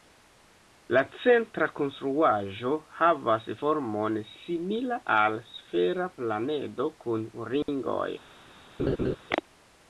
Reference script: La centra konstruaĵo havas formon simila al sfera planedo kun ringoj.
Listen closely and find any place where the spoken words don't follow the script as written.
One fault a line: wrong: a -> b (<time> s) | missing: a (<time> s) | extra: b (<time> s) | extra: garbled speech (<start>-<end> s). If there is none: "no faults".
no faults